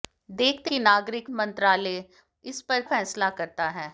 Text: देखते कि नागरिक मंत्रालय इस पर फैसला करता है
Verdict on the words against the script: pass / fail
pass